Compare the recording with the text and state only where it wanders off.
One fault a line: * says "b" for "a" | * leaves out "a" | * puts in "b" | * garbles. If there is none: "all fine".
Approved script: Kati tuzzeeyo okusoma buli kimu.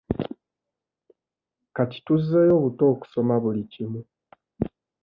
* puts in "buto"